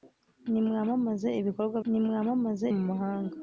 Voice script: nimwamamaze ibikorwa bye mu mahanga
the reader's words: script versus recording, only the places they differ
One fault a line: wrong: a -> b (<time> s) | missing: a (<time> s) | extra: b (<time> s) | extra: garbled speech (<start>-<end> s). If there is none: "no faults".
wrong: bye -> nimwamamaze (1.9 s)